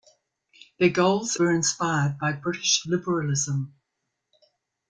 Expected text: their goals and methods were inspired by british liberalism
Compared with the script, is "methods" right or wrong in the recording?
wrong